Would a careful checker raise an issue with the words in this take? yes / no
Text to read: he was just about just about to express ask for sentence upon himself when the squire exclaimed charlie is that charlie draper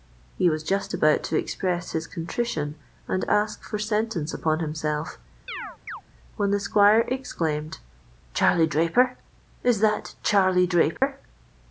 yes